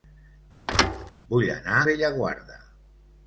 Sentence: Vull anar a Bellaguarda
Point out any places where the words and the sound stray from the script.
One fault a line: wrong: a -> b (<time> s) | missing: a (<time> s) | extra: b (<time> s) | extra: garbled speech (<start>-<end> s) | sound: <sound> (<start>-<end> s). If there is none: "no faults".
sound: thud (0.7-1.1 s)
missing: a (1.8 s)